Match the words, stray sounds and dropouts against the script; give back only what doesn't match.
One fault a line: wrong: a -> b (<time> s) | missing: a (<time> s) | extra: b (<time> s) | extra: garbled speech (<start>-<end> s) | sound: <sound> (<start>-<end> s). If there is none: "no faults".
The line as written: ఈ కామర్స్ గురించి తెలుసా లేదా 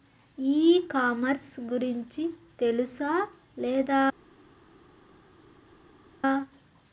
no faults